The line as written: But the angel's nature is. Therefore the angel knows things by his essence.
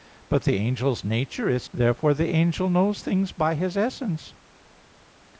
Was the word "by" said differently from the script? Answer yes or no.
no